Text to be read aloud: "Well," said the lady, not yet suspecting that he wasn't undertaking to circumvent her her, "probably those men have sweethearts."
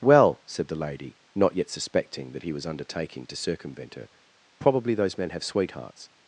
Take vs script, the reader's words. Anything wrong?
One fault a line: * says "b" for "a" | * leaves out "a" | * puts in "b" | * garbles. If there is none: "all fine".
* says "was" for "wasn't"
* leaves out "her"